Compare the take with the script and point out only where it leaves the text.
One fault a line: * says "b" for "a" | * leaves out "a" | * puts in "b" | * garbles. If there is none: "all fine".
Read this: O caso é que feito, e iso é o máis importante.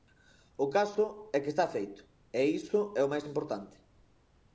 * puts in "está"